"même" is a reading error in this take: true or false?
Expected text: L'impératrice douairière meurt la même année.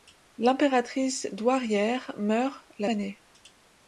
true